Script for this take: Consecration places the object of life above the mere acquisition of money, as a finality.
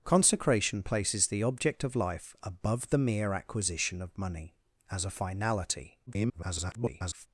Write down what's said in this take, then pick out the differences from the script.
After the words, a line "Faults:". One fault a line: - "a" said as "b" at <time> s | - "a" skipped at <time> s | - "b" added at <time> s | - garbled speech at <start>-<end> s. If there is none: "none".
Consecration places the object of life above the mere acquisition of money, as a finality. [garbled]
Faults:
- garbled speech at 6.1-7.3 s